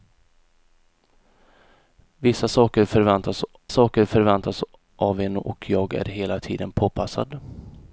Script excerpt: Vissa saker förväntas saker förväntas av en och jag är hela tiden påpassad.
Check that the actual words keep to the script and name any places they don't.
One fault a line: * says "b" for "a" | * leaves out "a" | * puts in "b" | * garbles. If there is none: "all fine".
all fine